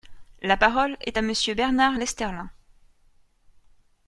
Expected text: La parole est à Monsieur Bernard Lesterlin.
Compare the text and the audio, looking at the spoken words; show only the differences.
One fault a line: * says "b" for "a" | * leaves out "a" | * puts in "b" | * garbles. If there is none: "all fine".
all fine